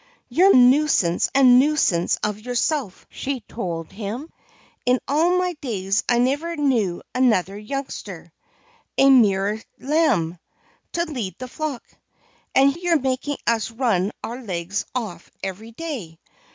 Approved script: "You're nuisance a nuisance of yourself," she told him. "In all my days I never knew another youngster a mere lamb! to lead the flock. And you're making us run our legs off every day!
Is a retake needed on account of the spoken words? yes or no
no